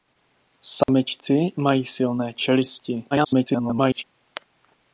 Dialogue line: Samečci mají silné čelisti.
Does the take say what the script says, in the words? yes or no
no